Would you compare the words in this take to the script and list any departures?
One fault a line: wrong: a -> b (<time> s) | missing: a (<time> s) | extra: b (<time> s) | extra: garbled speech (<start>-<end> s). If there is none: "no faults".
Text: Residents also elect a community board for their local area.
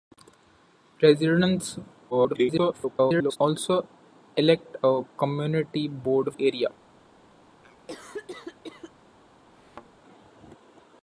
extra: garbled speech (2.1-3.4 s)
missing: for their local (6.3 s)